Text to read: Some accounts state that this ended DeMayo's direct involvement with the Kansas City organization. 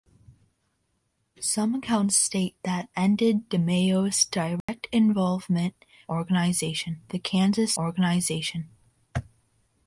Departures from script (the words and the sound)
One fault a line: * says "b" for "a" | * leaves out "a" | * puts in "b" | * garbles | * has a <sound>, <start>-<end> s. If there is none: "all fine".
* leaves out "this"
* has a dropout, 4.6-4.7 s
* says "organization" for "with"
* leaves out "City"